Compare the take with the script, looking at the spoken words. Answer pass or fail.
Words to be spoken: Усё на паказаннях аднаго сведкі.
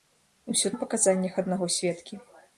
pass